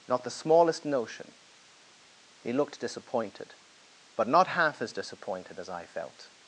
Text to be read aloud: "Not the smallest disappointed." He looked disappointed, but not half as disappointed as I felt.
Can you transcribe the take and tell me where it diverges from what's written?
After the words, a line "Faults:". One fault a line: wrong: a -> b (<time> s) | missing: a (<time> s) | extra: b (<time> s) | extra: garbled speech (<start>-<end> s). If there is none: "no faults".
"Not the smallest notion." He looked disappointed, but not half as disappointed as I felt.
Faults:
wrong: disappointed -> notion (0.8 s)